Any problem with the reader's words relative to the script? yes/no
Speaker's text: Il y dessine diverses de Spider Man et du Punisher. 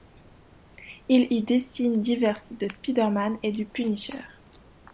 no